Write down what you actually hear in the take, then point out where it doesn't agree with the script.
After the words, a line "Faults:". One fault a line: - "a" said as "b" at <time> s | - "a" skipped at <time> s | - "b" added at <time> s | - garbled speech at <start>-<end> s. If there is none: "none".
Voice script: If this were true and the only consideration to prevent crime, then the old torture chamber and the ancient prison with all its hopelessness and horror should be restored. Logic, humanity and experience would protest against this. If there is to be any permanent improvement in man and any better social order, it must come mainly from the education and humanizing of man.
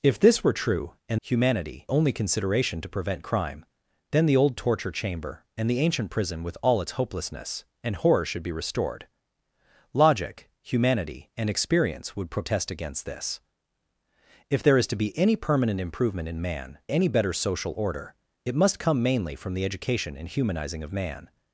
If this were true and humanity only consideration to prevent crime, then the old torture chamber and the ancient prison with all its hopelessness and horror should be restored. Logic, humanity and experience would protest against this. If there is to be any permanent improvement in man any better social order, it must come mainly from the education and humanizing of man.
Faults:
- "the" said as "humanity" at 1.2 s
- "and" skipped at 16.8 s